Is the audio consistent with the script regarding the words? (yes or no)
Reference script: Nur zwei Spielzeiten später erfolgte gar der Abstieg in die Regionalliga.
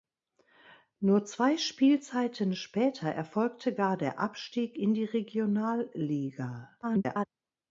no